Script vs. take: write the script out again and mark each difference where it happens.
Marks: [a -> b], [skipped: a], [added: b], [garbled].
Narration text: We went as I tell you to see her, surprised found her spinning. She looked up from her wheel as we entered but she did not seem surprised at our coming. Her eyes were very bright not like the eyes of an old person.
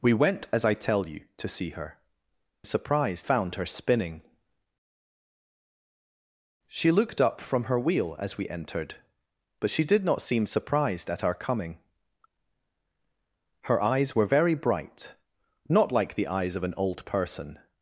We went as I tell you to see her, surprised found her spinning. She looked up from her wheel as we entered but she did not seem surprised at our coming. Her eyes were very bright not like the eyes of an old person.